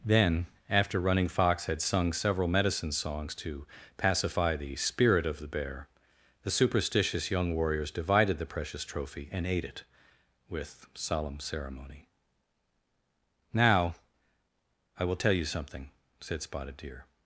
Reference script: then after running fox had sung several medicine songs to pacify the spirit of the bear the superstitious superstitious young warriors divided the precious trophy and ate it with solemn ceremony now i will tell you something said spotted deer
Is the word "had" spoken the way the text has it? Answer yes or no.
yes